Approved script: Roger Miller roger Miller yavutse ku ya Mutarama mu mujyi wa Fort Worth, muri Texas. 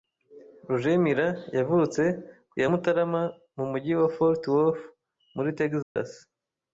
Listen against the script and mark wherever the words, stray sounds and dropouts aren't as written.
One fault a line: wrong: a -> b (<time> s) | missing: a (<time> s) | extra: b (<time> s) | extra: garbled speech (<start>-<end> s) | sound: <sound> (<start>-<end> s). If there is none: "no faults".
missing: roger Miller (1.3 s)
sound: dropout (5.8-6.0 s)